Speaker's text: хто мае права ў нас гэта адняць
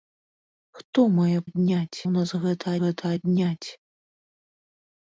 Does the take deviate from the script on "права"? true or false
true